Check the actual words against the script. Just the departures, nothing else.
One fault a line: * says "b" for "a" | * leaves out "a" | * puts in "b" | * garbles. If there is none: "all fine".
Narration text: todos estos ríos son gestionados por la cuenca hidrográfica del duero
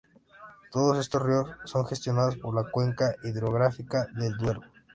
all fine